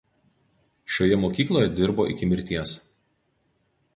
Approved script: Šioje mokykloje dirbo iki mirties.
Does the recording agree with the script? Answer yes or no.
yes